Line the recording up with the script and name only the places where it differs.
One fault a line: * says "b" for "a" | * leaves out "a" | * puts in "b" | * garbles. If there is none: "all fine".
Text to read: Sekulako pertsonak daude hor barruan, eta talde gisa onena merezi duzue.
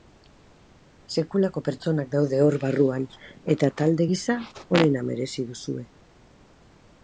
all fine